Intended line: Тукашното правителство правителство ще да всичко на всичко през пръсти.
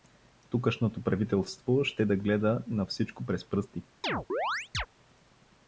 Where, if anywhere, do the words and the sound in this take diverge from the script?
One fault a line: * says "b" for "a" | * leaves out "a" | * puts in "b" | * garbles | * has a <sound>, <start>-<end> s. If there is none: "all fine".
* leaves out "правителство"
* says "гледа" for "всичко"
* has a chirp, 4.0-4.9 s